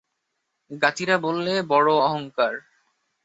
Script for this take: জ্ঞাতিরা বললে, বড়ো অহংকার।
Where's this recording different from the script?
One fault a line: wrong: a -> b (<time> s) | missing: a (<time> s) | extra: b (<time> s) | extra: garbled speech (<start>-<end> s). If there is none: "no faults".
no faults